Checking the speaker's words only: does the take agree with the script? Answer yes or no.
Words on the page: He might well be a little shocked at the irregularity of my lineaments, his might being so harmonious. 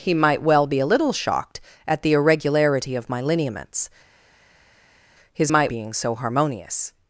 yes